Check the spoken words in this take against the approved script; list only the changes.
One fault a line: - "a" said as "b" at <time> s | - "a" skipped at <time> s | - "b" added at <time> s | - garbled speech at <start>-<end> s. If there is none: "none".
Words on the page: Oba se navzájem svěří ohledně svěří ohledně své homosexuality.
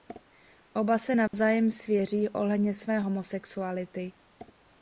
- "svěří ohledně" skipped at 2.7 s